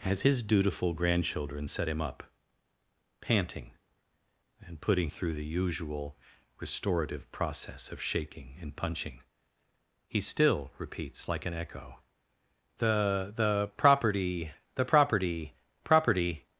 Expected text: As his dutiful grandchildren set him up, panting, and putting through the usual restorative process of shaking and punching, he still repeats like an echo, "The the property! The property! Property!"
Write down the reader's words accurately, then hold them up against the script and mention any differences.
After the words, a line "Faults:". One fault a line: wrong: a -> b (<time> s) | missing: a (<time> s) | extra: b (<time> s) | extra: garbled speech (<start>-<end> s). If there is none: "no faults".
As his dutiful grandchildren set him up, panting, and putting through the usual restorative process of shaking and punching, he still repeats like an echo, "The the property! The property! Property!"
Faults:
no faults